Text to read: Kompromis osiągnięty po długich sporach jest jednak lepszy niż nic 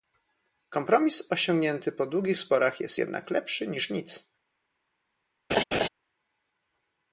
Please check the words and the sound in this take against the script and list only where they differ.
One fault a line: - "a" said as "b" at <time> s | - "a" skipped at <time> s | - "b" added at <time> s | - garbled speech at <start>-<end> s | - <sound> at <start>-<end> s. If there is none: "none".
- laugh at 5.5-5.9 s